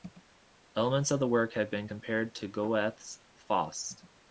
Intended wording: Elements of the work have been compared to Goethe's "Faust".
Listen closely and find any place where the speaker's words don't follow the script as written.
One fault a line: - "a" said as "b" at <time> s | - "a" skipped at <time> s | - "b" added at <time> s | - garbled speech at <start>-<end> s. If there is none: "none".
none